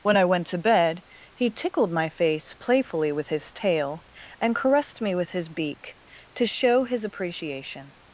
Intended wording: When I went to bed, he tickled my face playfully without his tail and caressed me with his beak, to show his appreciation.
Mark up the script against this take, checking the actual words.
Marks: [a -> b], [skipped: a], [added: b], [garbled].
When I went to bed, he tickled my face playfully [without -> with] his tail and caressed me with his beak, to show his appreciation.